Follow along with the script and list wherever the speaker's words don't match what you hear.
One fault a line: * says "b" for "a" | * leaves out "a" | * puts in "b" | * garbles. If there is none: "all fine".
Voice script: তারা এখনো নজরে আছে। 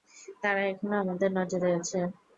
* puts in "আমাদের"